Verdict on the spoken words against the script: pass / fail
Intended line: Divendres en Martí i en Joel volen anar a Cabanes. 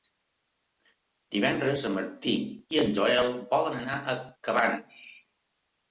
pass